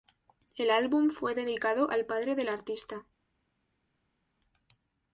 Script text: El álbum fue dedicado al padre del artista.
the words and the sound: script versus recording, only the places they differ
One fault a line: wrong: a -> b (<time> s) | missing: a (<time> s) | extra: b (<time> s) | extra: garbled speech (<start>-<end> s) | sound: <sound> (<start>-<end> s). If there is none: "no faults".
no faults